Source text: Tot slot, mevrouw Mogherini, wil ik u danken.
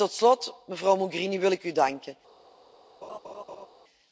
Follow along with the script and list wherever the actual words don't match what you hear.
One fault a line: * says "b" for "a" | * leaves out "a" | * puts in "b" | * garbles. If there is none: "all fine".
all fine